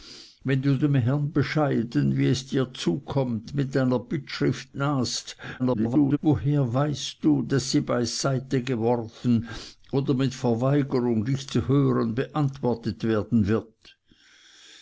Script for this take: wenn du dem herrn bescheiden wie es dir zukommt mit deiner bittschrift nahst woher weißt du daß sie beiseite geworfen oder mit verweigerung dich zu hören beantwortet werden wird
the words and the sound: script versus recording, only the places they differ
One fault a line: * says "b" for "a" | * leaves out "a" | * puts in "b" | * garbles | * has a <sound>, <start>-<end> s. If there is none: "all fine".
* garbles